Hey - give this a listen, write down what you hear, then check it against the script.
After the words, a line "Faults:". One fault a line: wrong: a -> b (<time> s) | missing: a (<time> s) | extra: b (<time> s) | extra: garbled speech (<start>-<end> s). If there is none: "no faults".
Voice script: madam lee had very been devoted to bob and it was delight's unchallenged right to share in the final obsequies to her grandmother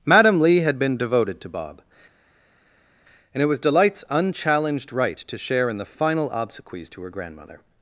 madam lee had been devoted to bob and it was delight's unchallenged right to share in the final obsequies to her grandmother
Faults:
missing: very (0.8 s)